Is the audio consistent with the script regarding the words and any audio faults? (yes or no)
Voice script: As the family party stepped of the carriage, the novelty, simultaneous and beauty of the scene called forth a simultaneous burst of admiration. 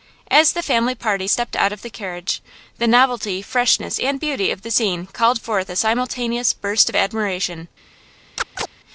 no